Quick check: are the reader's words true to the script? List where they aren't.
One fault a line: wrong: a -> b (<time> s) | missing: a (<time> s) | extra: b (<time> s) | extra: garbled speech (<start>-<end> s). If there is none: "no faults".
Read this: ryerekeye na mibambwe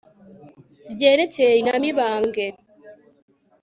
no faults